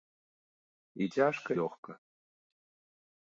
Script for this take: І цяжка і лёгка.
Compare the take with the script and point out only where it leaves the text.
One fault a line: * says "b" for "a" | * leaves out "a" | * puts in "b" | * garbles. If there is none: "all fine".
* leaves out "і"